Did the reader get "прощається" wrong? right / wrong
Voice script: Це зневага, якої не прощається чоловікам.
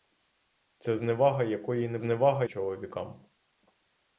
wrong